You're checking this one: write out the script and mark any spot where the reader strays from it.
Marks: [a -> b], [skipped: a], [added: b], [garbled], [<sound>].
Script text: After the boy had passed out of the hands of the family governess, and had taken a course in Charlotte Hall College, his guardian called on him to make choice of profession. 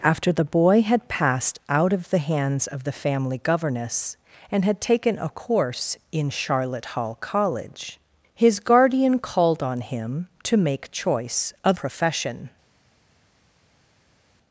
After the boy had passed out of the hands of the family governess, and had taken a course in Charlotte Hall College, his guardian called on him to make choice of profession.